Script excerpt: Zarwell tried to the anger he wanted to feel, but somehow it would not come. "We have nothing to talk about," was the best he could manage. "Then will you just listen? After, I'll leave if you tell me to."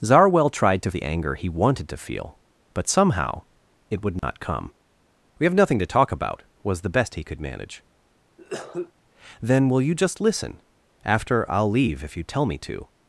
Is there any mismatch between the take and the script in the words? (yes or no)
no